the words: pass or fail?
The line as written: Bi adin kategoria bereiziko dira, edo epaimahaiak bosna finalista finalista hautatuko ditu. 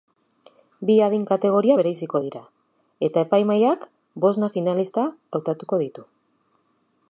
fail